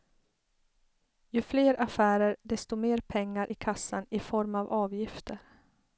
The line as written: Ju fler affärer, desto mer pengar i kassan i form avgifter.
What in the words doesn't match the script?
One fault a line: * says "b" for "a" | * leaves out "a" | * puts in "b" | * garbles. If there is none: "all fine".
* puts in "av"